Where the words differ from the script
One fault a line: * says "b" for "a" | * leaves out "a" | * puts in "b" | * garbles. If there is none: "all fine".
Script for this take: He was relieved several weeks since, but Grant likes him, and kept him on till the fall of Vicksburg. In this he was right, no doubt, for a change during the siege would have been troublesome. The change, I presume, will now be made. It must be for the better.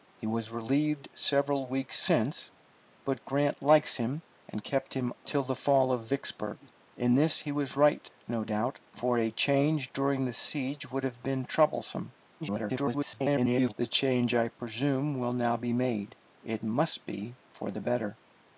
* leaves out "on"
* garbles